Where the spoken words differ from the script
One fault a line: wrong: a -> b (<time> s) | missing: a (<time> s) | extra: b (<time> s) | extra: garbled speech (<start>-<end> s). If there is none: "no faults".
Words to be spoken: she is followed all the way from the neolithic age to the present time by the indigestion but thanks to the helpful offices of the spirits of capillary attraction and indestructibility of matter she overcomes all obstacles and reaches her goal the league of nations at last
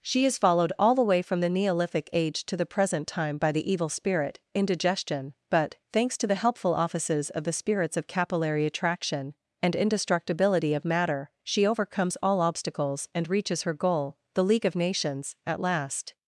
extra: evil spirit (3.7 s)